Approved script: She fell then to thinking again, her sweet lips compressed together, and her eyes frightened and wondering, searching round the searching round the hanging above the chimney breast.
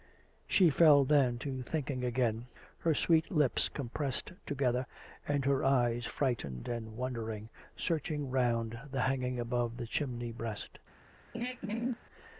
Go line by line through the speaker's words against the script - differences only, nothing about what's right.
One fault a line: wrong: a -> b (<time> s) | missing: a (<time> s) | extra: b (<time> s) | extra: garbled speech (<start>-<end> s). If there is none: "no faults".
missing: searching round the (9.0 s)